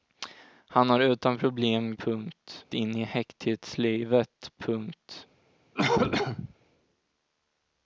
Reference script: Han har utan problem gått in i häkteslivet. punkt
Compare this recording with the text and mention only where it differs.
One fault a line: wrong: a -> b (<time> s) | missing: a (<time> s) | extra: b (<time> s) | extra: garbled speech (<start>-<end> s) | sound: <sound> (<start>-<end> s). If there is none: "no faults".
wrong: gått -> punkt (1.9 s)
sound: cough (5.7-6.5 s)